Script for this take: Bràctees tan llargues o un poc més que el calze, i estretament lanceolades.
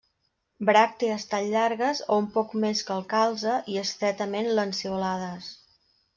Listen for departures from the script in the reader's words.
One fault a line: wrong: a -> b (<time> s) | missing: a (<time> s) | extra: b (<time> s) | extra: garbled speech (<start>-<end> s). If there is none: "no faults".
no faults